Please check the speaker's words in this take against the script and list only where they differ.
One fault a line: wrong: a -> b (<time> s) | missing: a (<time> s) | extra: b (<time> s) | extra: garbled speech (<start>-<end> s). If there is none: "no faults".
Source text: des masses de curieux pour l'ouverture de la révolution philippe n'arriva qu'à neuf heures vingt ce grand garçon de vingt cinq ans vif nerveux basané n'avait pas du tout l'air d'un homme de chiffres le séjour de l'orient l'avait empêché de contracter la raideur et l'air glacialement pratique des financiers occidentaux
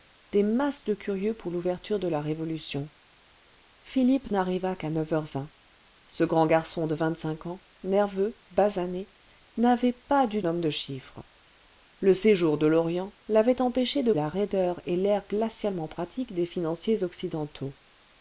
missing: vif (7.6 s)
missing: tout l'air d'un (10.4 s)
missing: contracter (14.1 s)